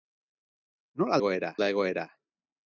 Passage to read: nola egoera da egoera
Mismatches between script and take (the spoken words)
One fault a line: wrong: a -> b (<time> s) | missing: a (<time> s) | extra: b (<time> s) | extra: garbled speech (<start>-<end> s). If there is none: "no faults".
no faults